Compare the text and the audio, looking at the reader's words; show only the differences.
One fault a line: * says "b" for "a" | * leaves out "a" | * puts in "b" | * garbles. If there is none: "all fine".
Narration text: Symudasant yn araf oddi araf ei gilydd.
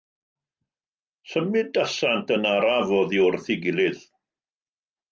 * says "wrth" for "araf"